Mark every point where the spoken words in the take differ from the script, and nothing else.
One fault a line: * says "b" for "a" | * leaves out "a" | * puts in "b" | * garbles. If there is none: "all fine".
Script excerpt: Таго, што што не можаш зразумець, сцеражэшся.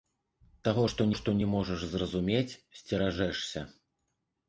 all fine